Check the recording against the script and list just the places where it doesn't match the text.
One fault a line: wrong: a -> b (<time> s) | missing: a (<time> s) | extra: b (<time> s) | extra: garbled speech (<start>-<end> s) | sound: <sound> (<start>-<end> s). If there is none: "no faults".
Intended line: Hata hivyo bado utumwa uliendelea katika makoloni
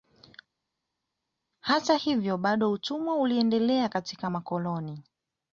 no faults